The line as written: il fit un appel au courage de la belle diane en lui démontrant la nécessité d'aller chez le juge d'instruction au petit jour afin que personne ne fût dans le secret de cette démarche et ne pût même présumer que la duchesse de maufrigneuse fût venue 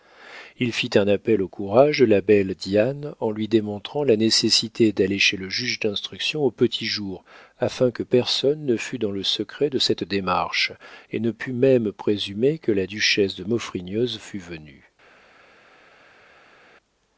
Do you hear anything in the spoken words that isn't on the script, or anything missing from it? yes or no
no